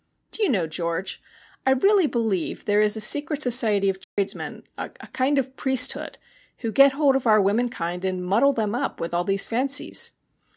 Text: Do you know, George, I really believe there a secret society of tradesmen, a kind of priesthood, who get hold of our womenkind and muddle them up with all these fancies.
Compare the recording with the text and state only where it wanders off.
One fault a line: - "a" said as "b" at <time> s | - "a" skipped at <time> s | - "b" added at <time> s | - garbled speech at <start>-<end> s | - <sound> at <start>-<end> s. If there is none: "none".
- "is" added at 2.8 s
- dropout at 4.0-4.2 s